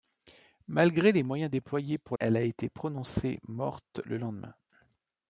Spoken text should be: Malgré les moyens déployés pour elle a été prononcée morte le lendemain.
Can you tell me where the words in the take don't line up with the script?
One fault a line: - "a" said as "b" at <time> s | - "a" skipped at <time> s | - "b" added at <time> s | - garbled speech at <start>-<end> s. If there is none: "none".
none